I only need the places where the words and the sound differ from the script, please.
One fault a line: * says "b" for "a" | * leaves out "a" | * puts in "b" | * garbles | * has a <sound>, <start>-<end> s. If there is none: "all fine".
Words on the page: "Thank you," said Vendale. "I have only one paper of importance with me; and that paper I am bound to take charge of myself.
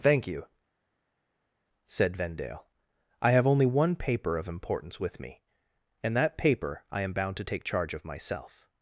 all fine